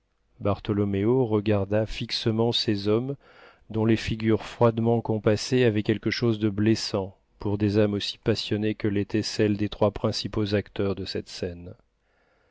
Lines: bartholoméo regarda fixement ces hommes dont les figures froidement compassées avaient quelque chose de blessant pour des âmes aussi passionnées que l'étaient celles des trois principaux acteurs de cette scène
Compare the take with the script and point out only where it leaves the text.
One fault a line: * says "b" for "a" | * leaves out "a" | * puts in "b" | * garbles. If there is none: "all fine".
all fine